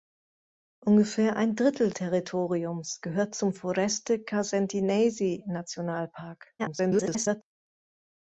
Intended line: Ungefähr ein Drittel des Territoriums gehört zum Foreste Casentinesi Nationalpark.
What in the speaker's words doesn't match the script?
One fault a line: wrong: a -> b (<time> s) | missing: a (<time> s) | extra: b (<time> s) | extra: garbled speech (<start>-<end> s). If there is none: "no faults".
missing: des (1.9 s)
extra: garbled speech (6.6-7.4 s)